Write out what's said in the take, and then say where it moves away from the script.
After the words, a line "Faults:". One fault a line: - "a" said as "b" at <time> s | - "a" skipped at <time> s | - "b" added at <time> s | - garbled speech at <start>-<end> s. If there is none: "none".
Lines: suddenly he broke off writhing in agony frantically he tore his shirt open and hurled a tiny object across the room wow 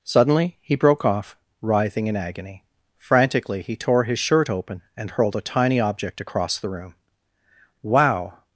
suddenly he broke off writhing in agony frantically he tore his shirt open and hurled a tiny object across the room wow
Faults:
none